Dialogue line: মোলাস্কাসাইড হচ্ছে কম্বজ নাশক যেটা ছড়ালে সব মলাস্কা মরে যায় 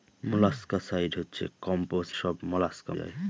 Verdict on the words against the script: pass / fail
fail